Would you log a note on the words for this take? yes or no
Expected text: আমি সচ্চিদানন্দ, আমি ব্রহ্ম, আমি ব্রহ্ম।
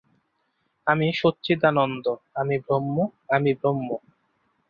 no